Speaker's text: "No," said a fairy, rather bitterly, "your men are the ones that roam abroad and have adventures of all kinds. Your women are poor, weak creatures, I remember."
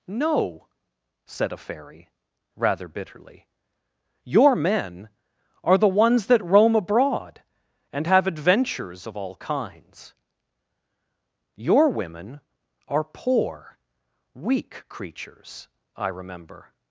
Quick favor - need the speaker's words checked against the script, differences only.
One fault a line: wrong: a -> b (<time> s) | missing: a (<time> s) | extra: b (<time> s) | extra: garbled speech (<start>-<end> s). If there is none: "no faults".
no faults